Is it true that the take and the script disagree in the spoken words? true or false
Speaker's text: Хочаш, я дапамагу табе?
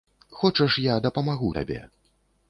false